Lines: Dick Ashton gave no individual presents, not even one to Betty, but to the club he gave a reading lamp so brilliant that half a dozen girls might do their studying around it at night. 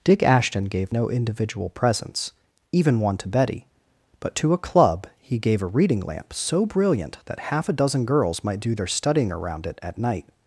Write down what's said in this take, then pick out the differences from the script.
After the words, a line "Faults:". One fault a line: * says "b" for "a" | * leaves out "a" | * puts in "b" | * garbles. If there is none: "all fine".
Dick Ashton gave no individual presents, even one to Betty, but to a club he gave a reading lamp so brilliant that half a dozen girls might do their studying around it at night.
Faults:
* leaves out "not"
* says "a" for "the"